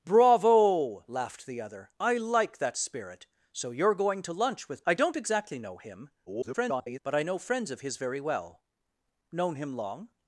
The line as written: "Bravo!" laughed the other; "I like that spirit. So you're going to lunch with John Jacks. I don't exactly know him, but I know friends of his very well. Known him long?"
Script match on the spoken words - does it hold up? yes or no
no